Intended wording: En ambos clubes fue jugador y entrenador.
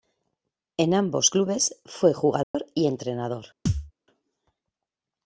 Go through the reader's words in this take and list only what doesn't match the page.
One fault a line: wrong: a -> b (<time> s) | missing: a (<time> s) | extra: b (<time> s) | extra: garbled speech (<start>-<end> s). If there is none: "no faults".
no faults